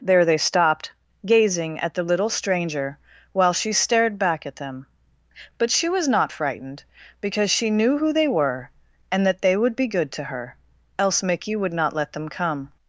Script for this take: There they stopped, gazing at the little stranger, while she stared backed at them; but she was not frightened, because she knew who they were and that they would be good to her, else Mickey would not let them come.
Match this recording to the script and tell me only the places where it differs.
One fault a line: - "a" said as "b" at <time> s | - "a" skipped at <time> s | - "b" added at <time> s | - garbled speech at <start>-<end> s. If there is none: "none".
- "backed" said as "back" at 4.2 s